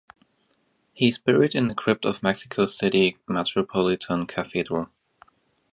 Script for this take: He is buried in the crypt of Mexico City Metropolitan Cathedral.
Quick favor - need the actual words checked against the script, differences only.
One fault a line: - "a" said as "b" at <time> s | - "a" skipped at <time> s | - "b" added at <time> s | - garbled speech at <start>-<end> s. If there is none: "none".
none